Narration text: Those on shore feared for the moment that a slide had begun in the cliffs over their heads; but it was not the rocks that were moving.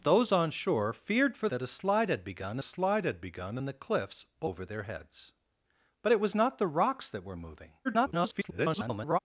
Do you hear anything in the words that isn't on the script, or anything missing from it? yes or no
yes